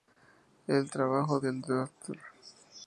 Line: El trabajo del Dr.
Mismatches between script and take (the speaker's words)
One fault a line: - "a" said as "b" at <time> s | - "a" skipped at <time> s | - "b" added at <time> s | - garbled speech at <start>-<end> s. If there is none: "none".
none